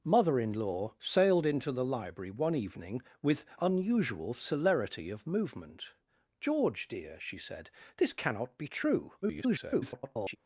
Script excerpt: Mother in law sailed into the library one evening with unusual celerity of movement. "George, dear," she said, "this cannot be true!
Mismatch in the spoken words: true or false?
true